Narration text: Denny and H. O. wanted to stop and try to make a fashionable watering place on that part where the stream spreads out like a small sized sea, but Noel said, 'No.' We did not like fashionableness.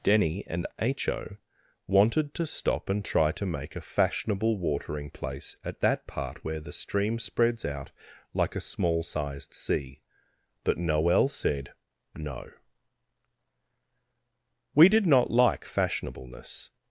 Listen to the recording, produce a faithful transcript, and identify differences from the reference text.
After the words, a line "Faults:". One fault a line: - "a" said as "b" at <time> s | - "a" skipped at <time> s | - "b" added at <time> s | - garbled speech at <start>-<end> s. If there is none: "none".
Denny and H. O. wanted to stop and try to make a fashionable watering place at that part where the stream spreads out like a small sized sea, but Noel said, 'No.' We did not like fashionableness.
Faults:
- "on" said as "at" at 5.6 s